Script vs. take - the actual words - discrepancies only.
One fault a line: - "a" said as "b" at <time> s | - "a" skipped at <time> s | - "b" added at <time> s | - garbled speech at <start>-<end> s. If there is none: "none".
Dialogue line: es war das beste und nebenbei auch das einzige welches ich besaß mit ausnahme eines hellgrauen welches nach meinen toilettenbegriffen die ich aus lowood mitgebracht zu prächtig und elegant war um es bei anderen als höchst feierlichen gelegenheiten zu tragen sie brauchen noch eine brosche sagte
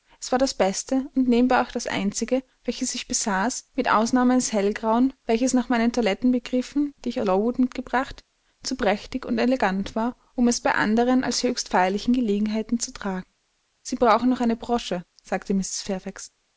- "aus" skipped at 7.2 s